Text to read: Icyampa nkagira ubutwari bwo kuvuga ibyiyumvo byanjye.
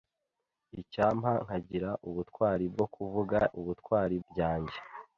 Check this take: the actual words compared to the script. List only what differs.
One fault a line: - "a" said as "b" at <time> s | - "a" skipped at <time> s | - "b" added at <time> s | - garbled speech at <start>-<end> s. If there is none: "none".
- "ibyiyumvo" said as "ubutwari" at 3.6 s